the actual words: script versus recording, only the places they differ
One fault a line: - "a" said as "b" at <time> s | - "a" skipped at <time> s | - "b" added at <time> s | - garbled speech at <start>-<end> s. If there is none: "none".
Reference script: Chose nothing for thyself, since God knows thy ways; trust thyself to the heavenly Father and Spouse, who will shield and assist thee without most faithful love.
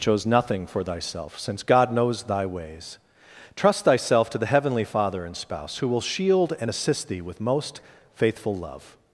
- "without" said as "with" at 7.2 s